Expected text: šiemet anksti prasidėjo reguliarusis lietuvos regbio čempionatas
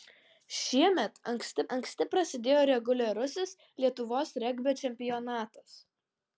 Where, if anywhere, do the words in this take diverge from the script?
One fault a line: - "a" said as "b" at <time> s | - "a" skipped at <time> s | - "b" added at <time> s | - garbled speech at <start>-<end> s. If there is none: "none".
- "anksti" added at 1.8 s